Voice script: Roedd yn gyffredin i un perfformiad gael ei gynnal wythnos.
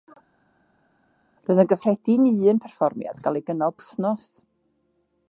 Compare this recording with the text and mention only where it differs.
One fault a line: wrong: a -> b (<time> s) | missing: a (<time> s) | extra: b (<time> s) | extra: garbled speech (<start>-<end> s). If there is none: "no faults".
no faults